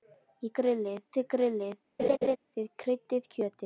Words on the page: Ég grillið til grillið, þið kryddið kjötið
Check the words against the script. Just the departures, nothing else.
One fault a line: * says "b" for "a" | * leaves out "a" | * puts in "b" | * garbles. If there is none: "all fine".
all fine